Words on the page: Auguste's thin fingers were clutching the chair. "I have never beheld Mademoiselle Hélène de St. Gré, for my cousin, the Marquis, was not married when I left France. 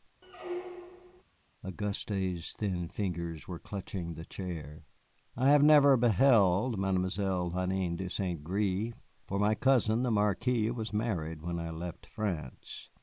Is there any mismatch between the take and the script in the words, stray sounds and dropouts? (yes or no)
yes